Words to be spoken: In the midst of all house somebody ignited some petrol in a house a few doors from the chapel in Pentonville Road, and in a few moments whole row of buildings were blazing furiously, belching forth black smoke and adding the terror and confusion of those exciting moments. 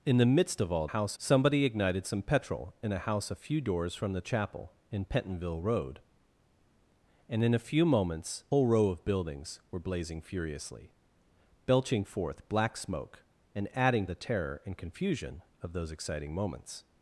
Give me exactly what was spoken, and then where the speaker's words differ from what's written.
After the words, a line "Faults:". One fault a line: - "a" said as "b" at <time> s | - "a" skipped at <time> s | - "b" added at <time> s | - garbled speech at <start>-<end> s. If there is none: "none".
In the midst of all house somebody ignited some petrol in a house a few doors from the chapel in Pentonville Road, and in a few moments whole row of buildings were blazing furiously, belching forth black smoke and adding the terror and confusion of those exciting moments.
Faults:
none